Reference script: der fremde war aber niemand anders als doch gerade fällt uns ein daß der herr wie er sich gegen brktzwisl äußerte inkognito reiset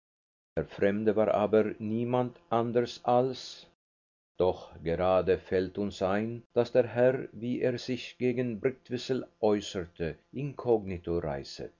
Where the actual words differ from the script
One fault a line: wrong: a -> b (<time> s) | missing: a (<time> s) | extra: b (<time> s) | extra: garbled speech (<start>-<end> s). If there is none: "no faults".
no faults